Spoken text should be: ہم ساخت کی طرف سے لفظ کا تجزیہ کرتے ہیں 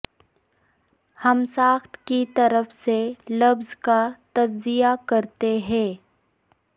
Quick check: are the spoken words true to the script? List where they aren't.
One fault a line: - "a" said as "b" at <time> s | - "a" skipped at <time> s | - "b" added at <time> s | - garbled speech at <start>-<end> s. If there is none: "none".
none